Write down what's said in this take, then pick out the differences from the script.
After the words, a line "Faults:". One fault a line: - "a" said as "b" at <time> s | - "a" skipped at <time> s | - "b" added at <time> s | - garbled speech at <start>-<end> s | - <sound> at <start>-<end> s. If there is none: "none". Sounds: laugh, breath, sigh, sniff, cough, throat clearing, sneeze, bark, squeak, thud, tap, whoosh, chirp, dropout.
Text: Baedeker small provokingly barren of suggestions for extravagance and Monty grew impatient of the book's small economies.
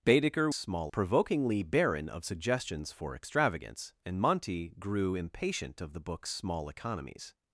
Baedeker small provokingly barren of suggestions for extravagance and Monty grew impatient of the book's small economies.
Faults:
none